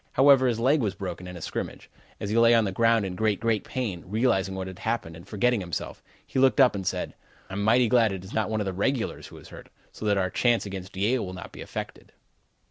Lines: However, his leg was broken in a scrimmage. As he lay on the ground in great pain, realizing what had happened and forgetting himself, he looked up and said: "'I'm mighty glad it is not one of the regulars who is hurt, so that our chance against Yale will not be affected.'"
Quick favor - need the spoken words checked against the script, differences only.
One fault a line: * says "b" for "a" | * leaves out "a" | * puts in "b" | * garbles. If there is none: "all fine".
* puts in "great"